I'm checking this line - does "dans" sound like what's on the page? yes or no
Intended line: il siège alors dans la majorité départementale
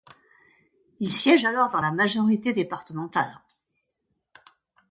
yes